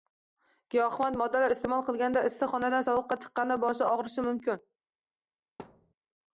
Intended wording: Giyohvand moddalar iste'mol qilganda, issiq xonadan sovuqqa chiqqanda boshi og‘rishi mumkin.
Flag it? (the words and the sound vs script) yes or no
yes